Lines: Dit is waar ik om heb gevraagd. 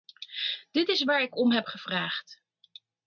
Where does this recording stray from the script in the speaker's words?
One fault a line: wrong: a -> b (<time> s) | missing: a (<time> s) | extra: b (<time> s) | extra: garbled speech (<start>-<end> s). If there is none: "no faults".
no faults